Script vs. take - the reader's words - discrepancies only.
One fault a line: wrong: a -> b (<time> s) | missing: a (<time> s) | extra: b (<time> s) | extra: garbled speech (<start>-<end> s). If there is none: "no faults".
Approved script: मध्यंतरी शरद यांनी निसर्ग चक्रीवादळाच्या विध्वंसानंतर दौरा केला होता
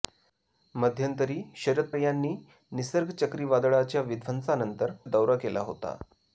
no faults